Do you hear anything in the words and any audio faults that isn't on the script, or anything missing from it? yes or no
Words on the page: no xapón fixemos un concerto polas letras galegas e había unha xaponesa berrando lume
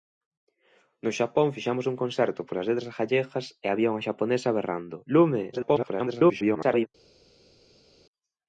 yes